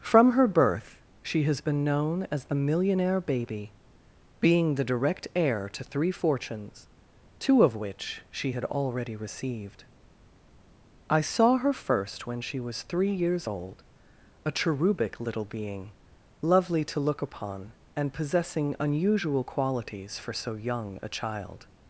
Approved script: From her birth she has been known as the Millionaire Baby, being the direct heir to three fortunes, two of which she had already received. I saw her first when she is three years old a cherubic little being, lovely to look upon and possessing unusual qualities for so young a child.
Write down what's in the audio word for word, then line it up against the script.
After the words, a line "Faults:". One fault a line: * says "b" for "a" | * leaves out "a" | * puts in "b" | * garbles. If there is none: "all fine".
From her birth she has been known as the Millionaire Baby, being the direct heir to three fortunes, two of which she had already received. I saw her first when she was three years old a cherubic little being, lovely to look upon and possessing unusual qualities for so young a child.
Faults:
* says "was" for "is"